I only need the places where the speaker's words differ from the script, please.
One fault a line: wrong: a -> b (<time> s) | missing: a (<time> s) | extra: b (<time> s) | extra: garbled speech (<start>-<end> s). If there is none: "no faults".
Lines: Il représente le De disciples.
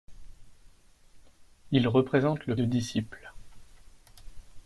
no faults